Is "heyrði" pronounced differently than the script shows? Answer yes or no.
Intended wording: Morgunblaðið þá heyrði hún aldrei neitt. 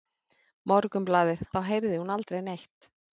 no